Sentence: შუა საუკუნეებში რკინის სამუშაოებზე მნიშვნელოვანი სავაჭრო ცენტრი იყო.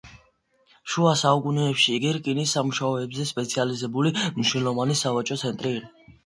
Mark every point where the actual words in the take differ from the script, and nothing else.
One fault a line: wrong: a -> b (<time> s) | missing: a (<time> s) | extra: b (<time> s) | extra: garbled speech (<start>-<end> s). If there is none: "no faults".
extra: იგი (1.9 s)
extra: სპეციალიზებული (3.3 s)